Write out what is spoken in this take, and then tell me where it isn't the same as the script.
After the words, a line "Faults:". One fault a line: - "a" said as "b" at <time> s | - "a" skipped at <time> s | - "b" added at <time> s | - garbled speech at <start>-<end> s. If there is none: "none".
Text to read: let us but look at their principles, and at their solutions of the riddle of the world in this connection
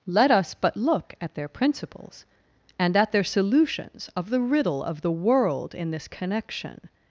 let us but look at their principles, and at their solutions of the riddle of the world in this connection
Faults:
none